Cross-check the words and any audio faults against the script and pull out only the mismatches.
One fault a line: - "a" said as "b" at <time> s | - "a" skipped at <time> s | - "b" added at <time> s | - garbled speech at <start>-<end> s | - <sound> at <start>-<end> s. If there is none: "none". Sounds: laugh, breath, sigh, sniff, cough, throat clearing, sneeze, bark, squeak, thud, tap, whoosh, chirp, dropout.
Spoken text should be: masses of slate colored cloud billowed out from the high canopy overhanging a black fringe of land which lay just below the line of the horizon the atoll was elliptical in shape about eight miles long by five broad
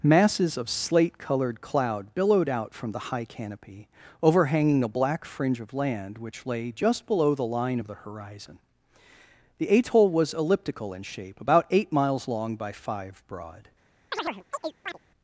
- chirp at 14.1-15.0 s